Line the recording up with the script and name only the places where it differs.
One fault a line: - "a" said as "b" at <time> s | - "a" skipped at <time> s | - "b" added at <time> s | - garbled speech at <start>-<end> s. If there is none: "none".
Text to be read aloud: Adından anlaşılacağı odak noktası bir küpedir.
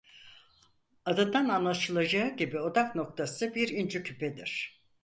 - "gibi" added at 2.4 s
- "inci" added at 3.7 s